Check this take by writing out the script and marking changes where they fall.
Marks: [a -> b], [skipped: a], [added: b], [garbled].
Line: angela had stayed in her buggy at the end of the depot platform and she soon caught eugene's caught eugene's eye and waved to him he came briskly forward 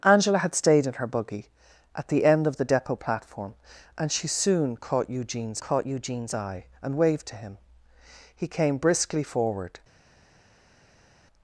angela had stayed in her buggy at the end of the depot platform and she soon caught eugene's caught eugene's eye and waved to him he came briskly forward